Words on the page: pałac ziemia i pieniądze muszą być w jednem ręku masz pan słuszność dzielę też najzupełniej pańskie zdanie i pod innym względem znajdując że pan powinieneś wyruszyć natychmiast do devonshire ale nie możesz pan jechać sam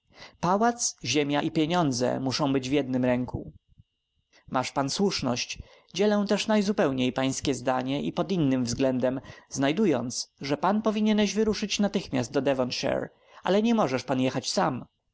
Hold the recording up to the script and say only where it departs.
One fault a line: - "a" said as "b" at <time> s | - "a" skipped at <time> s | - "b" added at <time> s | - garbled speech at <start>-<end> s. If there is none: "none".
none